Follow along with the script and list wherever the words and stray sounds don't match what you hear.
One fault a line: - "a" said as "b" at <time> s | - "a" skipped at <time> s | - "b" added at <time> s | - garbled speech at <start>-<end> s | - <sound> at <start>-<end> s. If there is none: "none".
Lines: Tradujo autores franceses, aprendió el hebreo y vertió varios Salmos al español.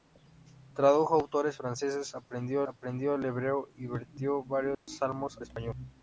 - "aprendió" added at 2.7 s
- dropout at 4.7-4.9 s
- "al" skipped at 5.4 s